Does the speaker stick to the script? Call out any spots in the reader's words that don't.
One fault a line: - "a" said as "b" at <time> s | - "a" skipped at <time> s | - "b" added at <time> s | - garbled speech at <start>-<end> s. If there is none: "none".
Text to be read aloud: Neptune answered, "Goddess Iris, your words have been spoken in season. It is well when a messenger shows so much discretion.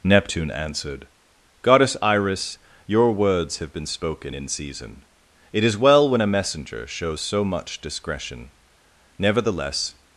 - "Nevertheless" added at 9.2 s